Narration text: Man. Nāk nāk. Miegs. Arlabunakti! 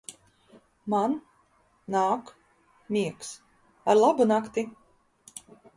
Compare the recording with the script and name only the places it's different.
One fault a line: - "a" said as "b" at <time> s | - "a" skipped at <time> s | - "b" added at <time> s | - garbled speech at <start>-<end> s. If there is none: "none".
- "nāk" skipped at 2.3 s